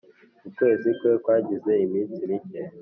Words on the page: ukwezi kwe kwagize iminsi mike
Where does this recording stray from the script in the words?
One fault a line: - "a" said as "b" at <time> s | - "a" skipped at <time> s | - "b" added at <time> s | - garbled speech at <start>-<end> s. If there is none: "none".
none